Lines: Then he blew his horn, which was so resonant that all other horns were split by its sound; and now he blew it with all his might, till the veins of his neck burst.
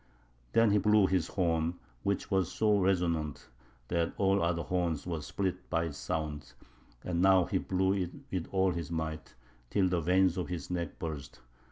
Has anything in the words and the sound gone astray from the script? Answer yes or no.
no